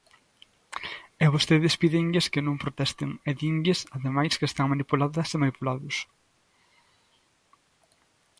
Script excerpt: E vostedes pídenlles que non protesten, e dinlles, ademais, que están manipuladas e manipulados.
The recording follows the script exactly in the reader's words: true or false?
true